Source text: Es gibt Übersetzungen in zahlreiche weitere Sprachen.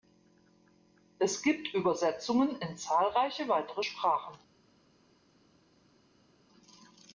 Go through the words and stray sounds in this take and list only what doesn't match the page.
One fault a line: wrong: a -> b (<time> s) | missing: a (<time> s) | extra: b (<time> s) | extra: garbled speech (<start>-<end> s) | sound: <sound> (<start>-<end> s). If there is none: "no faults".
no faults